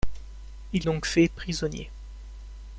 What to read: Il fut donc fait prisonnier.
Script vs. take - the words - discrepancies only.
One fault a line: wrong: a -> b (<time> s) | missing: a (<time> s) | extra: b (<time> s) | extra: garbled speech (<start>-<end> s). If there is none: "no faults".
missing: fut (0.9 s)